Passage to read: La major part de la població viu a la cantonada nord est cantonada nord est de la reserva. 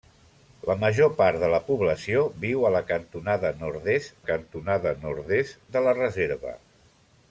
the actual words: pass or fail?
pass